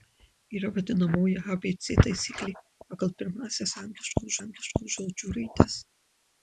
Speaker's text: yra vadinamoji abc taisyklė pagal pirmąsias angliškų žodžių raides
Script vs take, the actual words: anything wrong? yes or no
yes